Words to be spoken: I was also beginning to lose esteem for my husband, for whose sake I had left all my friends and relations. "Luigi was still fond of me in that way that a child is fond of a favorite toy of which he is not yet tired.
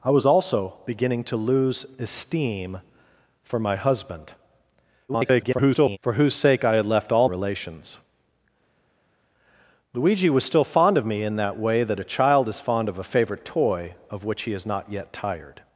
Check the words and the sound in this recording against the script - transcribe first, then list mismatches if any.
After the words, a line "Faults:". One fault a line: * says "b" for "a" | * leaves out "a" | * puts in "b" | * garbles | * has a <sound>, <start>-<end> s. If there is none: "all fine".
I was also beginning to lose esteem for my husband, [garbled] for whose sake I had left all relations. "Luigi was still fond of me in that way that a child is fond of a favorite toy of which he is not yet tired.
Faults:
* garbles
* leaves out "my friends and"